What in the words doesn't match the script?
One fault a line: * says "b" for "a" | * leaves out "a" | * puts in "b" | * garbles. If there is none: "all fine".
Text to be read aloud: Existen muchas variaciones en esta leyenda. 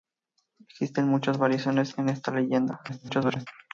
* garbles